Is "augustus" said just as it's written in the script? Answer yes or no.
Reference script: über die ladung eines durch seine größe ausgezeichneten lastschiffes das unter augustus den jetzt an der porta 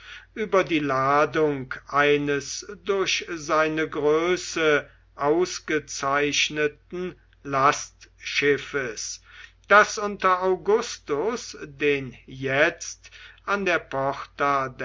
yes